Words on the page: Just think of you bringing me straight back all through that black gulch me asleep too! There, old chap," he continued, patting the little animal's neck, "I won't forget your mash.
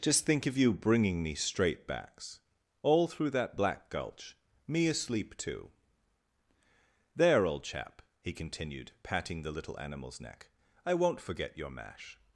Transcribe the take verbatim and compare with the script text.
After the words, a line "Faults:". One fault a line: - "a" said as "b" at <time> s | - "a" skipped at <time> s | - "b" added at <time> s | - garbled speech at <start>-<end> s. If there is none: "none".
Just think of you bringing me straight backs all through that black gulch me asleep too! There, old chap," he continued, patting the little animal's neck, "I won't forget your mash.
Faults:
- "back" said as "backs" at 1.9 s